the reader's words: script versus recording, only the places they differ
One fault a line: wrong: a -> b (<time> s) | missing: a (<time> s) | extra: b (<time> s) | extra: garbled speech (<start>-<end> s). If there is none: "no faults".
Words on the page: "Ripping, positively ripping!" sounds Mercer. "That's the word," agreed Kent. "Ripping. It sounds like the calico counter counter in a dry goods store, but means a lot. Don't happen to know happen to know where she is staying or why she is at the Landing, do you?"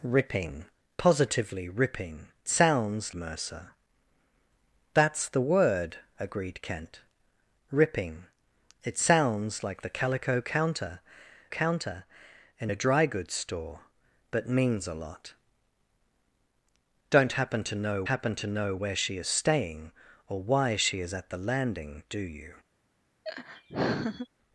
no faults